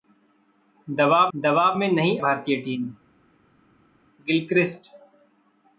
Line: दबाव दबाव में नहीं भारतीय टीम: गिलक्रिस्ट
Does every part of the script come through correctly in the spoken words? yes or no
yes